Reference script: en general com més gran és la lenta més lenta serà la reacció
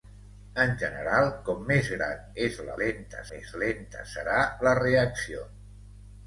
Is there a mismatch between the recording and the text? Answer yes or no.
no